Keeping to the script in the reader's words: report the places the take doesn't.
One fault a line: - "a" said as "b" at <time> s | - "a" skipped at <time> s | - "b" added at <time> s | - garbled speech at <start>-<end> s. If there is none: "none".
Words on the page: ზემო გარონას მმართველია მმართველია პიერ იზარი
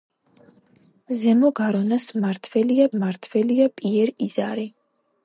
none